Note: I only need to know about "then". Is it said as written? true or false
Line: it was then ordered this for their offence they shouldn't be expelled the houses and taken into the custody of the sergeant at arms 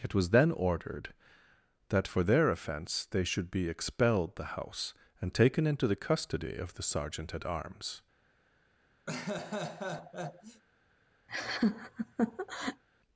true